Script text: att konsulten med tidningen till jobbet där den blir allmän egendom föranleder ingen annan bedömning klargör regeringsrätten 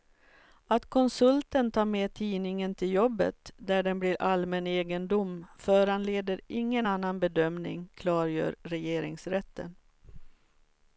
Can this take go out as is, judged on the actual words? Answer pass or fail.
fail